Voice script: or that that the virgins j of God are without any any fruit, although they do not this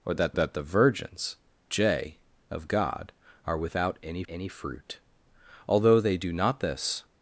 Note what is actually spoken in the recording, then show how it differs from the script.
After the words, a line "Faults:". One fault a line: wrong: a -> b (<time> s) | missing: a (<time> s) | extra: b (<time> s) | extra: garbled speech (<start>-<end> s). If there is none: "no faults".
or that that the virgins j of God are without any any fruit, although they do not this
Faults:
no faults